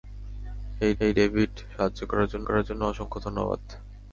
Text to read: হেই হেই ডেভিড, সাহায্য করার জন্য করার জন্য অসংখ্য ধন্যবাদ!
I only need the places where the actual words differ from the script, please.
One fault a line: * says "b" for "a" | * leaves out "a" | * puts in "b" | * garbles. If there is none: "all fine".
all fine